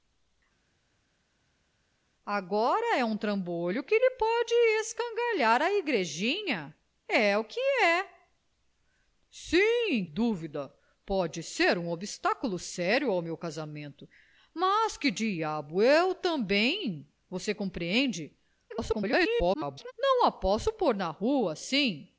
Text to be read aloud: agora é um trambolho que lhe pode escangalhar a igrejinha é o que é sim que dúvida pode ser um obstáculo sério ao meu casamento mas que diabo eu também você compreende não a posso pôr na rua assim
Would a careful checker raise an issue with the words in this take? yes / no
yes